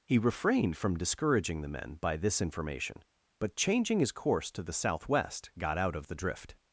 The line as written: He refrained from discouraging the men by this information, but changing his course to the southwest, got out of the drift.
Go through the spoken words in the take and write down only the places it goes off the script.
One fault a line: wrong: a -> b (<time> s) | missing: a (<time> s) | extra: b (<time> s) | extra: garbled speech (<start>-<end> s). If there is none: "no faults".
no faults